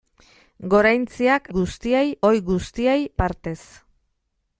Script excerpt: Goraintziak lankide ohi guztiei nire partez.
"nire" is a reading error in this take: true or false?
true